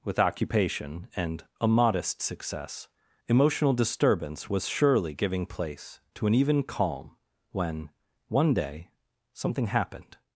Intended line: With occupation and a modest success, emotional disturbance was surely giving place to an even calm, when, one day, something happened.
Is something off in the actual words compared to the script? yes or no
no